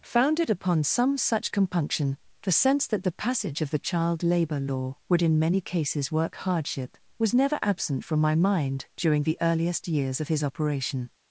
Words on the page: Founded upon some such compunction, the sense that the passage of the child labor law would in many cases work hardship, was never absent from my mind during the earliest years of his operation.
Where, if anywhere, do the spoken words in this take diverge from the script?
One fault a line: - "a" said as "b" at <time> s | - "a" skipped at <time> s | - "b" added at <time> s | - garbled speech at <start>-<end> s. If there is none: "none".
none